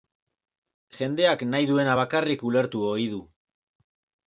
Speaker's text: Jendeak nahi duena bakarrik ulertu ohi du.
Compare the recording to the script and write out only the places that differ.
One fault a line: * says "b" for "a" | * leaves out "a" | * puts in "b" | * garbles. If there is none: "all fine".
all fine